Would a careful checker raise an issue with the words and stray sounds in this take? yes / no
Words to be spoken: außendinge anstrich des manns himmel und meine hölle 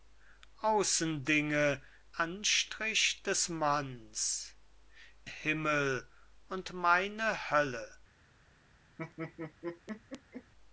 yes